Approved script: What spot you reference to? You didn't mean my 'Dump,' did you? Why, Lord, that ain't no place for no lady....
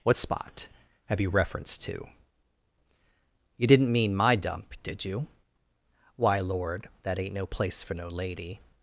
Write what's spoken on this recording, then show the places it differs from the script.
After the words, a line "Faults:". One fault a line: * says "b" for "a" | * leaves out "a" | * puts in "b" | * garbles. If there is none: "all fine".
What spot have you reference to? You didn't mean my 'Dump,' did you? Why, Lord, that ain't no place for no lady....
Faults:
* puts in "have"